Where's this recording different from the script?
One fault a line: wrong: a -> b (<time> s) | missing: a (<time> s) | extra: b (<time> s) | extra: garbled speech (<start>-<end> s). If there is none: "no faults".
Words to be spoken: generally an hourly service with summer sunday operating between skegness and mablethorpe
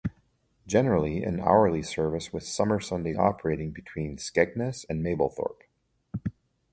no faults